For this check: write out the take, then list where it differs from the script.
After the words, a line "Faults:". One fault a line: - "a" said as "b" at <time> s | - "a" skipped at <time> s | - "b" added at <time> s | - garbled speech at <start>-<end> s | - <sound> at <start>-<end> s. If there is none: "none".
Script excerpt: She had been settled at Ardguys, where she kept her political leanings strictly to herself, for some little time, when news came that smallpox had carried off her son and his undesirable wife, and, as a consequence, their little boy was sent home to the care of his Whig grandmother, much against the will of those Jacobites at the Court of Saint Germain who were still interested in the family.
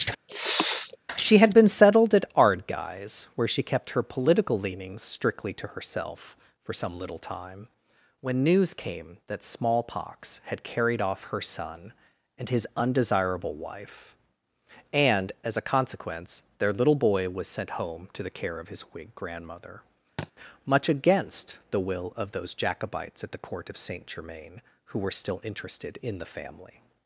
She had been settled at Ardguys, where she kept her political leanings strictly to herself, for some little time, when news came that smallpox had carried off her son and his undesirable wife, and, as a consequence, their little boy was sent home to the care of his Whig grandmother, much against the will of those Jacobites at the Court of Saint Germain who were still interested in the family.
Faults:
- sniff at 0.3-1.0 s
- thud at 20.2-20.3 s